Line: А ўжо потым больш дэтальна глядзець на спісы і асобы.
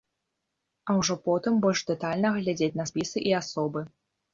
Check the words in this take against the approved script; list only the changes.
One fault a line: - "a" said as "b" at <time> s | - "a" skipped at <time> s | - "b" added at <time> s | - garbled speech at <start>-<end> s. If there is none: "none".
none